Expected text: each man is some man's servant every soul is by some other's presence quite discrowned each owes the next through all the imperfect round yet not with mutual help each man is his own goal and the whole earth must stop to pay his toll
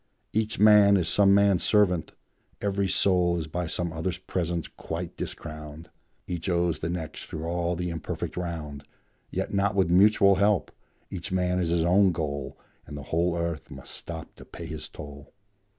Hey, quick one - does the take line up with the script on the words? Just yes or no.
yes